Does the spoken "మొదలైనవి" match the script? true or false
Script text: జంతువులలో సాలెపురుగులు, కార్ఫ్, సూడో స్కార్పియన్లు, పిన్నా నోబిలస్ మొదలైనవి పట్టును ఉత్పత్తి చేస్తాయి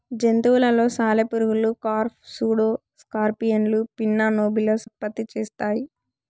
false